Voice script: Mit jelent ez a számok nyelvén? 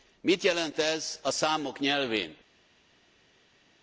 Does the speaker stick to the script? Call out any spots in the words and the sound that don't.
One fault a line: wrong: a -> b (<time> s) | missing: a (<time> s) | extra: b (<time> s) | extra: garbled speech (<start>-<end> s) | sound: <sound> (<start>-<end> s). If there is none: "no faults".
no faults